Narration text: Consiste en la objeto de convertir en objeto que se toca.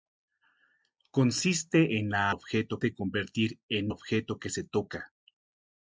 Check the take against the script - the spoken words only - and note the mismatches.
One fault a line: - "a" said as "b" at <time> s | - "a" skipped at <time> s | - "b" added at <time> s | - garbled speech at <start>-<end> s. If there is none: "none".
none